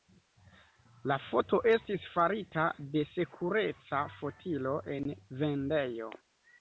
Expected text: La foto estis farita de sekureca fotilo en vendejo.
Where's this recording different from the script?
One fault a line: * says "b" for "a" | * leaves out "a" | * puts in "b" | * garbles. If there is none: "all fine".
all fine